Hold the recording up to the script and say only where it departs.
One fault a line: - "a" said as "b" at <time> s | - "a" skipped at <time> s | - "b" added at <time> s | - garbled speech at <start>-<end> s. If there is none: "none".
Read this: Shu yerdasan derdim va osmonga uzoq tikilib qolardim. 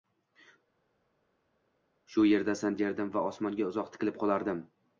none